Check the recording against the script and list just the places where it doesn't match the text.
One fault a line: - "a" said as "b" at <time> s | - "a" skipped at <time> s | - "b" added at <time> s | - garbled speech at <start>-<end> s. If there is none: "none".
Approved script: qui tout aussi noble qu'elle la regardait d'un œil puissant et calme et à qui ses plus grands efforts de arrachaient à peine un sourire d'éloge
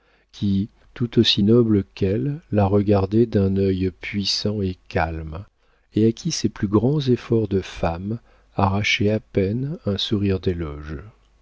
- "femme" added at 7.6 s